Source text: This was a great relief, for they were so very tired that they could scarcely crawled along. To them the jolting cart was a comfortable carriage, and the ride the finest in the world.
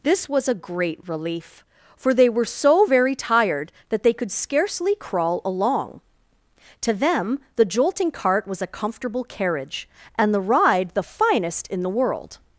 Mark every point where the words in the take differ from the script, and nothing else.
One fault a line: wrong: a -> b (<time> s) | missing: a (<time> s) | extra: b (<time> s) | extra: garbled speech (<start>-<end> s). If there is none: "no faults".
wrong: crawled -> crawl (4.9 s)